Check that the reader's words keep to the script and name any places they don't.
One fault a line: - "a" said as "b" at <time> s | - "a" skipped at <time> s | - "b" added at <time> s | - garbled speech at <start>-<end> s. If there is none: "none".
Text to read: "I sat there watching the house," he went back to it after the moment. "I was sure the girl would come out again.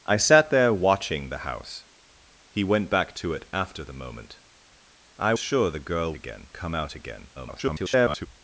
- "was" skipped at 5.3 s
- "would" said as "again" at 6.1 s
- garbled speech at 7.3-8.3 s